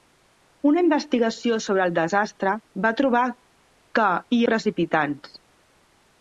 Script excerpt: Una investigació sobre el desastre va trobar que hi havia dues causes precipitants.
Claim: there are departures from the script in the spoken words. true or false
true